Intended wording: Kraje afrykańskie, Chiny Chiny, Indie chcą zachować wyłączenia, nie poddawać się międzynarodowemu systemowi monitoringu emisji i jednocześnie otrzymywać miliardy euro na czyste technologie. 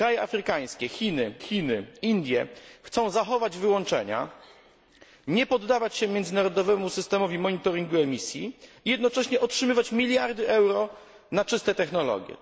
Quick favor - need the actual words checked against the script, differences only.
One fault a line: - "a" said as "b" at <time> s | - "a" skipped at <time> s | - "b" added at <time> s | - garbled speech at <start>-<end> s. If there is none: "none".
none